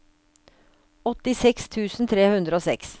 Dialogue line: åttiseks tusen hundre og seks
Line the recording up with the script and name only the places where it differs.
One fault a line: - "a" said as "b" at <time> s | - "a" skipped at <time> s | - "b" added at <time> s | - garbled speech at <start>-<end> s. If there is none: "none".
- "tre" added at 2.1 s